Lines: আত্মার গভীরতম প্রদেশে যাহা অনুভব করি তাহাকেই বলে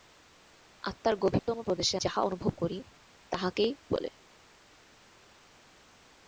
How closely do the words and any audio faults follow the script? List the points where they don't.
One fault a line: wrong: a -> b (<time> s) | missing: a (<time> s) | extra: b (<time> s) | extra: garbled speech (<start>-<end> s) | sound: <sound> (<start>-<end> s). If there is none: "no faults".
no faults